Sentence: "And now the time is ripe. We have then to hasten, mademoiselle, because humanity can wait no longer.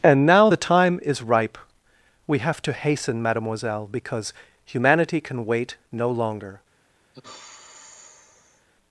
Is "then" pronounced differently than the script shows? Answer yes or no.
yes